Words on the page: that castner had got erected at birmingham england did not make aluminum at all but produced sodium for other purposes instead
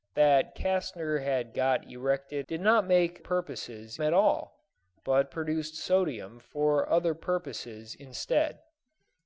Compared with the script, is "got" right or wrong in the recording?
right